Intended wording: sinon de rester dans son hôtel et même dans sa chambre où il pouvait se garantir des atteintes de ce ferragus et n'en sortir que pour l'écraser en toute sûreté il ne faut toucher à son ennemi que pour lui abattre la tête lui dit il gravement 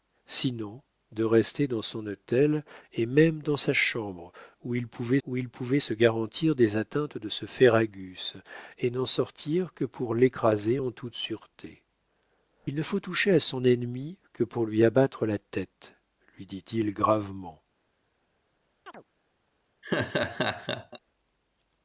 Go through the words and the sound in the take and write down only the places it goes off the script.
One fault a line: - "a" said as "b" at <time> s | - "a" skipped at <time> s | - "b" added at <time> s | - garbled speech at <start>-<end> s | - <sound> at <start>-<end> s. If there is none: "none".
- "où il pouvait" added at 5.3 s
- chirp at 18.9-19.0 s
- laugh at 19.8-21.0 s